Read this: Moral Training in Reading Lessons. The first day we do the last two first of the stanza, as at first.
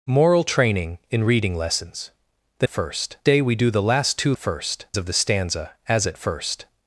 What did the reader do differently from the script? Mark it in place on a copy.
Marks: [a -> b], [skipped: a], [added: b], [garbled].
Moral Training in Reading Lessons. The first day we do the last two first of the stanza, as at first.